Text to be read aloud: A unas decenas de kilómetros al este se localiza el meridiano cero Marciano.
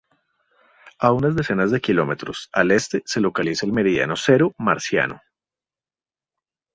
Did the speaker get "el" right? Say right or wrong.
right